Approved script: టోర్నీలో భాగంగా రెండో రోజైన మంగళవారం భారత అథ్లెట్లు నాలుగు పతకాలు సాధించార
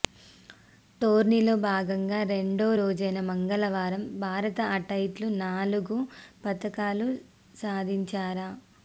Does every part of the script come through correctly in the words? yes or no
yes